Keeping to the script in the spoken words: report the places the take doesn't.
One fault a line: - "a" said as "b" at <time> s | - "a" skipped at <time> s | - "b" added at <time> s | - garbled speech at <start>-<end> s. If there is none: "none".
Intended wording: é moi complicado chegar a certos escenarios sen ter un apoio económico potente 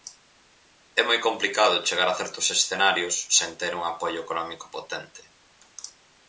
none